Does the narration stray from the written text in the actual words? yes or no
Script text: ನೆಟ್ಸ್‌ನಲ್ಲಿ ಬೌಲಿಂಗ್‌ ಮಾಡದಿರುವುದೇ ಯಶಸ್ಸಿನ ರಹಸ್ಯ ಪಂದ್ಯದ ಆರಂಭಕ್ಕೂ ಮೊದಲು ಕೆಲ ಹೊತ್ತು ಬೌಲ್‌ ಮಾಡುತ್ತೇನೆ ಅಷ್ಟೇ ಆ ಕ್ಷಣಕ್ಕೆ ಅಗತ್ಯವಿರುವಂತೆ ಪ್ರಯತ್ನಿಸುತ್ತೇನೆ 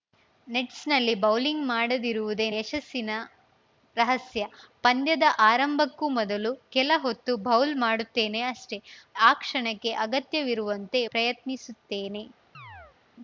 no